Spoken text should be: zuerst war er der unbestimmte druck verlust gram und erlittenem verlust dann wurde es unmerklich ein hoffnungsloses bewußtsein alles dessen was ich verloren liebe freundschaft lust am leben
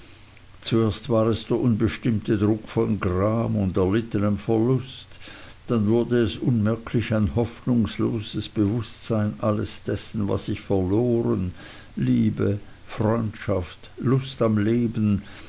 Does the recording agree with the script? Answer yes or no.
no